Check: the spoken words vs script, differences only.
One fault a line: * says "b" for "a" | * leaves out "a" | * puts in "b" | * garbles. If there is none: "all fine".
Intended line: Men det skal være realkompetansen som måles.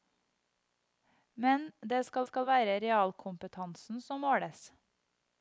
* puts in "skal"